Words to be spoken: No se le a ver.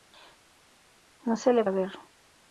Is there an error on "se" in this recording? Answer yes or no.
no